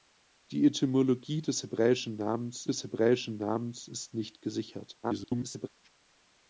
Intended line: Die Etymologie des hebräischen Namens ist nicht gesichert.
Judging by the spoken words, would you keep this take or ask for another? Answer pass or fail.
fail